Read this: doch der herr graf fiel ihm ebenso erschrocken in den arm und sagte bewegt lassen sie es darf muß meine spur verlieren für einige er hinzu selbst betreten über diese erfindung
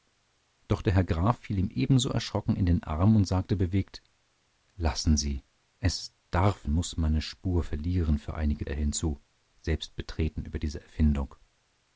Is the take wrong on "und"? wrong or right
right